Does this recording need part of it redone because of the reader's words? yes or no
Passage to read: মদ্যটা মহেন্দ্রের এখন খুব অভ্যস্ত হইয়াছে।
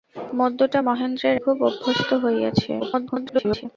yes